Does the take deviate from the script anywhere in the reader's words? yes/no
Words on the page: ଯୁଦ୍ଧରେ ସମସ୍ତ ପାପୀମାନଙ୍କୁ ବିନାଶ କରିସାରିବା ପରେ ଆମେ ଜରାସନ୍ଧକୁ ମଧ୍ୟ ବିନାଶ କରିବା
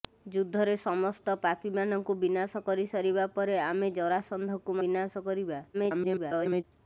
yes